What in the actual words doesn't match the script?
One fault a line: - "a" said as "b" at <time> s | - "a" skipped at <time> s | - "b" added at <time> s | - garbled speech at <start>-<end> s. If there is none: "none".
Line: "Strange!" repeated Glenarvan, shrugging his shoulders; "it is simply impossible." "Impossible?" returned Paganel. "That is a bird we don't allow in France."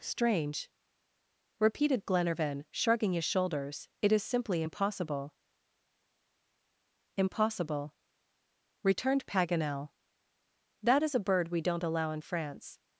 none